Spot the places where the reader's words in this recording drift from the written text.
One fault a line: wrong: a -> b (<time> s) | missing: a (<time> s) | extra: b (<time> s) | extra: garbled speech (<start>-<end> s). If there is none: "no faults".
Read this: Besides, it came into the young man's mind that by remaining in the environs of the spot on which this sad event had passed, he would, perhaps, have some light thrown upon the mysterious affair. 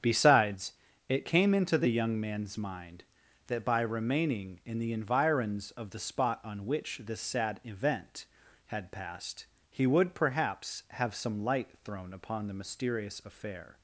no faults